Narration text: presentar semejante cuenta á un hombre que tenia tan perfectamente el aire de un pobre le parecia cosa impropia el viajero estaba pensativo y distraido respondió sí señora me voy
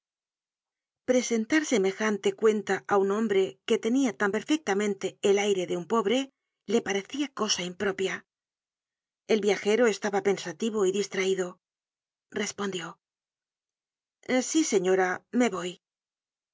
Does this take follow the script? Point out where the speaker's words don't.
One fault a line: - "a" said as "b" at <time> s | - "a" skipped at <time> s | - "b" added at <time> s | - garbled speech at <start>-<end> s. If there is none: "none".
none